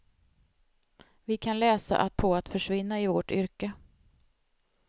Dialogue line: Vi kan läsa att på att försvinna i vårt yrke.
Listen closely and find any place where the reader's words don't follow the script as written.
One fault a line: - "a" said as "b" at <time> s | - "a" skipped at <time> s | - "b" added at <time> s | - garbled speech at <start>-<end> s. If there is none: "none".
none